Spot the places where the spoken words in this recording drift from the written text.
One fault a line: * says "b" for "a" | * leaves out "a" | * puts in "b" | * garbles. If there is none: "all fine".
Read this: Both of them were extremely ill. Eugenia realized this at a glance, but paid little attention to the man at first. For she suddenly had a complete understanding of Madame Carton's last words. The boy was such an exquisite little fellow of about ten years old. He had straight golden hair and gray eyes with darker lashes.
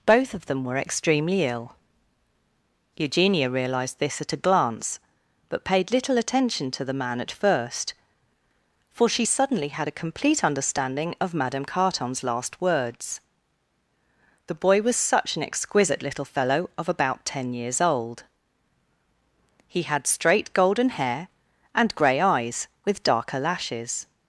all fine